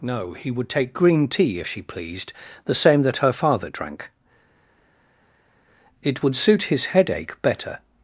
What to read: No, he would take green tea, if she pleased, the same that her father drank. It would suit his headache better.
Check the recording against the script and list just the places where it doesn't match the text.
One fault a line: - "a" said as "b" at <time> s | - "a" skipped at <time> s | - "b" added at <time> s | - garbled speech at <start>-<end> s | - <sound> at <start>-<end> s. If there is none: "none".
none